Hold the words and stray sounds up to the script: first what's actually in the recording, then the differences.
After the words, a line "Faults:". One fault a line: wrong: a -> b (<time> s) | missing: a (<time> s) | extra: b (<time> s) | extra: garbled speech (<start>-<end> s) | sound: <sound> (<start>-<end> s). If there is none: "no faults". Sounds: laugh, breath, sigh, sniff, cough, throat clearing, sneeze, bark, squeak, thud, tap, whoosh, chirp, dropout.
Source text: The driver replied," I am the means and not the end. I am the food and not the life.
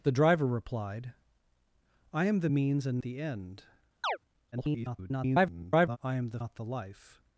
The driver replied," I am the means and the end. [garbled] I am the not the life.
Faults:
missing: not (3.0 s)
sound: chirp (4.0-4.2 s)
extra: garbled speech (4.5-6.0 s)
missing: food and (6.4 s)